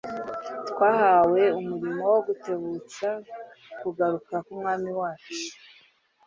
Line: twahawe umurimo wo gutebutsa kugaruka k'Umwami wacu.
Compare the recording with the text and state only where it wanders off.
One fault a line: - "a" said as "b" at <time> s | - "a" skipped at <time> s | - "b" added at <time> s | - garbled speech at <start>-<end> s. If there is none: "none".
none